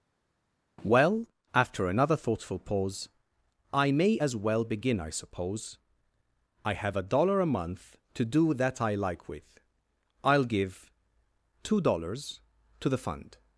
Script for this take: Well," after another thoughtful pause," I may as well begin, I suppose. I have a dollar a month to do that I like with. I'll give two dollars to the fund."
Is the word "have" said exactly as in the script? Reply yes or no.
yes